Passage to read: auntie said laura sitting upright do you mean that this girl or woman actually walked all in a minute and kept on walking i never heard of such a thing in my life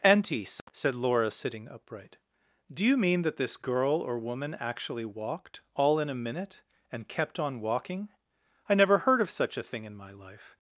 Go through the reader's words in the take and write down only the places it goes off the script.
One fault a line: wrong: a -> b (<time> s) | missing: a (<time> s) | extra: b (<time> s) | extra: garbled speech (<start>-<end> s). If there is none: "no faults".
no faults